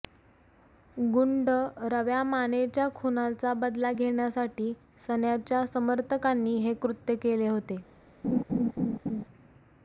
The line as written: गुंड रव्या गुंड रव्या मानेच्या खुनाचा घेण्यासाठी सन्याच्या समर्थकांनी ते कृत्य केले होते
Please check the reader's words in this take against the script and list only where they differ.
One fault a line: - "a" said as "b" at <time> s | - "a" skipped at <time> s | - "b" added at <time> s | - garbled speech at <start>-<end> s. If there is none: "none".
- "गुंड रव्या" skipped at 2.2 s
- "बदला" added at 3.5 s
- "ते" said as "हे" at 6.6 s